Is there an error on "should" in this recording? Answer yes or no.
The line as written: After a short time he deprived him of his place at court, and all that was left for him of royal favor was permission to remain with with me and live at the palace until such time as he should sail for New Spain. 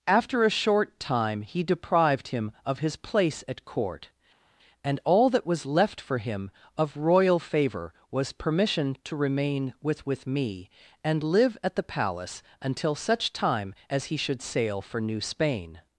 no